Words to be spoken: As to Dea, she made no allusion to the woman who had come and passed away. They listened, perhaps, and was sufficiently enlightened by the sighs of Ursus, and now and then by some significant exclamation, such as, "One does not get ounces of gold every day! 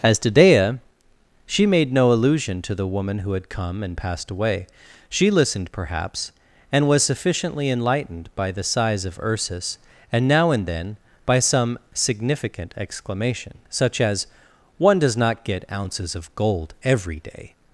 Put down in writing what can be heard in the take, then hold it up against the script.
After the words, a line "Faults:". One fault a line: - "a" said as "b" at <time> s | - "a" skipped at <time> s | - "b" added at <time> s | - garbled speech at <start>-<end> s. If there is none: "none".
As to Dea, she made no allusion to the woman who had come and passed away. She listened, perhaps, and was sufficiently enlightened by the sighs of Ursus, and now and then by some significant exclamation, such as, "One does not get ounces of gold every day!
Faults:
- "They" said as "She" at 5.1 s